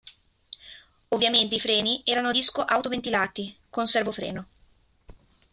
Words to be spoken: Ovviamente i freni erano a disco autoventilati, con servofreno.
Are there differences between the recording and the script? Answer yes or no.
no